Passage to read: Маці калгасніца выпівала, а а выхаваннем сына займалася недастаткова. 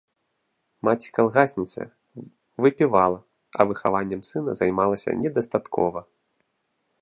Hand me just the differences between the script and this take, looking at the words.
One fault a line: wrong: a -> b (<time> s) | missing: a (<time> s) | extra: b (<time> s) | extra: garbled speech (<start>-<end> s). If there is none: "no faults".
missing: а (3.7 s)